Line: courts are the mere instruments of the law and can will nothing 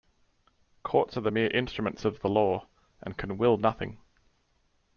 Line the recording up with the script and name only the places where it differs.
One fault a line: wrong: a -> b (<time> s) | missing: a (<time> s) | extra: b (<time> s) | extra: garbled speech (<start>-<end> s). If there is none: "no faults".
no faults